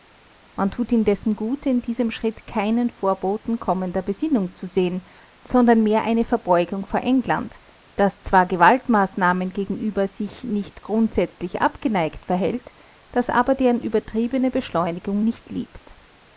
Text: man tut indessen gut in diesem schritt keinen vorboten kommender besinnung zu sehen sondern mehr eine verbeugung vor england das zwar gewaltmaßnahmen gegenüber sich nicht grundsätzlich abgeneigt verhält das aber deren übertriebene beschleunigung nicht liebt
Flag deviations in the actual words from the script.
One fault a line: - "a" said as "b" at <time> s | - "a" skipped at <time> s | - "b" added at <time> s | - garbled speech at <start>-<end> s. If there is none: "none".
none